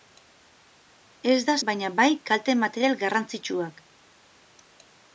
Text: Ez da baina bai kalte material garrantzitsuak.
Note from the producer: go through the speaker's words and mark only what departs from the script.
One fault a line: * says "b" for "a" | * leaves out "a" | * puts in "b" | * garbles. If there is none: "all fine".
all fine